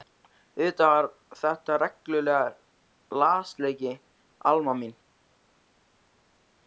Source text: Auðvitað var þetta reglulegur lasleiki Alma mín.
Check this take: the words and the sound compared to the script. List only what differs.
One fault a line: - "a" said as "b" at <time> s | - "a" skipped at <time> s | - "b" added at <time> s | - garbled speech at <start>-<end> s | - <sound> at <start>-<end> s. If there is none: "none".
none